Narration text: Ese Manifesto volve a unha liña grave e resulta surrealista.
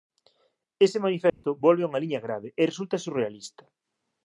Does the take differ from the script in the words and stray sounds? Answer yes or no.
yes